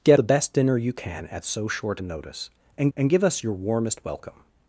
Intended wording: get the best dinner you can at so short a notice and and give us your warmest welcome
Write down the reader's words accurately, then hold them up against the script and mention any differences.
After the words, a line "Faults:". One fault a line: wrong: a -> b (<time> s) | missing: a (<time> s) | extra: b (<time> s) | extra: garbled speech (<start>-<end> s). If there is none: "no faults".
get the best dinner you can at so short a notice and and give us your warmest welcome
Faults:
no faults